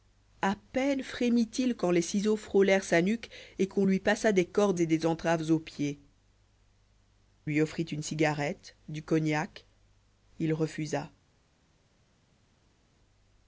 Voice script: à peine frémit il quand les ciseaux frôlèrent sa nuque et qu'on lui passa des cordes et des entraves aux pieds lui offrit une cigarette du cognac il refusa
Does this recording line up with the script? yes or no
yes